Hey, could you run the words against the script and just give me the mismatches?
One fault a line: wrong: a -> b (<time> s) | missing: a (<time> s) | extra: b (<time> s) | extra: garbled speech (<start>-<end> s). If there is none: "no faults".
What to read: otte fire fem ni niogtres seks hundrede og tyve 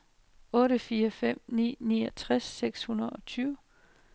no faults